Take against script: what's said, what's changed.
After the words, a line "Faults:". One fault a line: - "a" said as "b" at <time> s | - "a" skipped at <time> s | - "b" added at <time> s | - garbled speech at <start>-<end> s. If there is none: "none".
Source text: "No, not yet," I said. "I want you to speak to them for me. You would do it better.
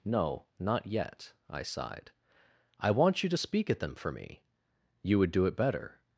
"No, not yet," I sighed. "I want you to speak at them for me. You would do it better.
Faults:
- "said" said as "sighed" at 1.6 s
- "to" said as "at" at 3.7 s